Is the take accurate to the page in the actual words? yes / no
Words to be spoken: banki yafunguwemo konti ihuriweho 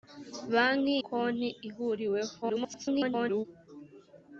no